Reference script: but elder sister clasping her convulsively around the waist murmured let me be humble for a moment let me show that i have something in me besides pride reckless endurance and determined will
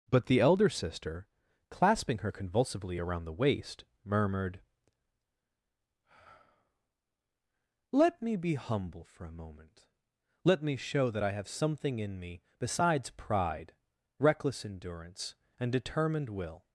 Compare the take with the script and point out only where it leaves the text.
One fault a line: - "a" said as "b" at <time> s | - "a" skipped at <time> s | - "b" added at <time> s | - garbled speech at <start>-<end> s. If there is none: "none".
- "the" added at 0.2 s